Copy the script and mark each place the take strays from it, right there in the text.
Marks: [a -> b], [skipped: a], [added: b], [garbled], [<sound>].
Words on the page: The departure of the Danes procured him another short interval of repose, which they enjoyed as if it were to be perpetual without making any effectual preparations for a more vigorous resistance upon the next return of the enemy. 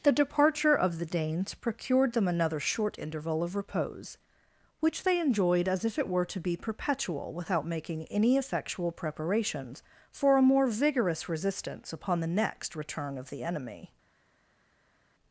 The departure of the Danes procured [him -> them] another short interval of repose, which they enjoyed as if it were to be perpetual without making any effectual preparations for a more vigorous resistance upon the next return of the enemy.